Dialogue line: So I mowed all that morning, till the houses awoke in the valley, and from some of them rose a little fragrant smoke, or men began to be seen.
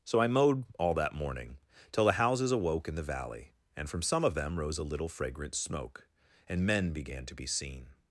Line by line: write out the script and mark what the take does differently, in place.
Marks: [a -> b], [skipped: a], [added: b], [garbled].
So I mowed all that morning, till the houses awoke in the valley, and from some of them rose a little fragrant smoke, [or -> and] men began to be seen.